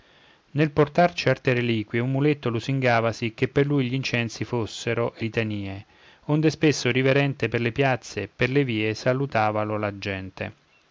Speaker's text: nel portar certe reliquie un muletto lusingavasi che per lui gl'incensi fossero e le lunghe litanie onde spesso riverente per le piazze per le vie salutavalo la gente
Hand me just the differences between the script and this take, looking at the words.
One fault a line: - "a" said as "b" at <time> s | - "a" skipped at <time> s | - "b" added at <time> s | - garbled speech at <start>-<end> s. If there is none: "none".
- "le lunghe" skipped at 5.2 s